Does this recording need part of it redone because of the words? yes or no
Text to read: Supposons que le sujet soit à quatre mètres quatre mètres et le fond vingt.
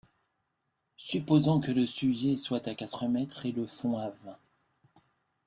yes